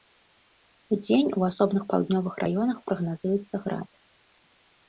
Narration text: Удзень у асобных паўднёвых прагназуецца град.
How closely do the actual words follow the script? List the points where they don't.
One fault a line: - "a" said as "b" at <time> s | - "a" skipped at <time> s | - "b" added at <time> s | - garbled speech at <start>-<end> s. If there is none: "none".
- "раёнах" added at 2.5 s